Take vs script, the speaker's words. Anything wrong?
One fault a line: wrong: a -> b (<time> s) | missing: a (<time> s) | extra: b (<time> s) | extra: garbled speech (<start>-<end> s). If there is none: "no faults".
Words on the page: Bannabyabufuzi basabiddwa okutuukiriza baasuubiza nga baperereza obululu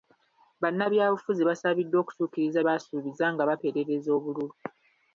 no faults